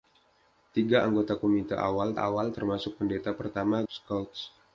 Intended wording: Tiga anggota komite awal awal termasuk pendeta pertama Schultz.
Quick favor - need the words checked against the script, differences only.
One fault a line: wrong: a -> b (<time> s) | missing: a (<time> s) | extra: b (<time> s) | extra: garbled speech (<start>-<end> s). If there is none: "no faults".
no faults